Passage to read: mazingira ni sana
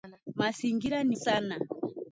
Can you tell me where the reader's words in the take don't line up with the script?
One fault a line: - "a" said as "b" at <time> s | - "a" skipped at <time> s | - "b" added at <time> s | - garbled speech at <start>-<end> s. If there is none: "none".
none